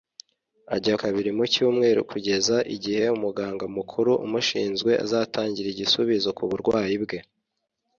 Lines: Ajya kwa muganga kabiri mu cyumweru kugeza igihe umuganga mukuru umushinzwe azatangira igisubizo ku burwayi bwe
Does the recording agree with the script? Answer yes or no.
no